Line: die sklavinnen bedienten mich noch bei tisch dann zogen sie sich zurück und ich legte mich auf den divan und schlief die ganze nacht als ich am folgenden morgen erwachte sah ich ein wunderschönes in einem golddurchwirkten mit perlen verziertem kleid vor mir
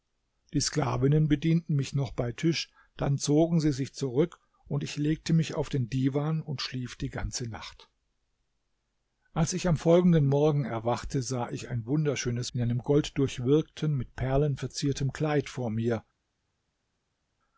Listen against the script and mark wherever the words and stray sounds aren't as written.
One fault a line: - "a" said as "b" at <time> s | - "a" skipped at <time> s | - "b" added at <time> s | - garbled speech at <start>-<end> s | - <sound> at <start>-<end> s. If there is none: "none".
none